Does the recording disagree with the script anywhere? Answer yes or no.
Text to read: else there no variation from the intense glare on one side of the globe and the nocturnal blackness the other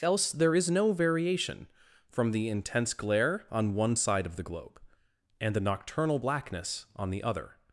yes